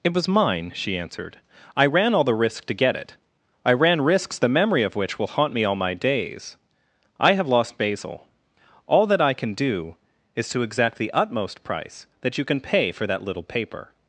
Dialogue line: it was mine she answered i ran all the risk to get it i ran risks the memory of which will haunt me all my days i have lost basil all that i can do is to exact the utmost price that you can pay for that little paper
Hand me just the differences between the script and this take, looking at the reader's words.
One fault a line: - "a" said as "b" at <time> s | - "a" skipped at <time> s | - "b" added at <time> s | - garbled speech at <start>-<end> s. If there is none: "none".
none